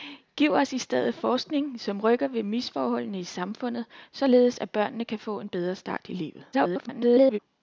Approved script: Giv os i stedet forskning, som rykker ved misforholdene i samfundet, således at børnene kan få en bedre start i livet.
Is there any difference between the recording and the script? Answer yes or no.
yes